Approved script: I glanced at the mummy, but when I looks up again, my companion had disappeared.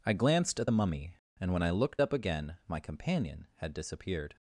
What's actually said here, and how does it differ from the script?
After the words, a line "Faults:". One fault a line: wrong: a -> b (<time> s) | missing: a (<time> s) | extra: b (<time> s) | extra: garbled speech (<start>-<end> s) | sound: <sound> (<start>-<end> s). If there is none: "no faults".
I glanced at the mummy, and when I looked up again, my companion had disappeared.
Faults:
wrong: but -> and (1.4 s)
wrong: looks -> looked (1.7 s)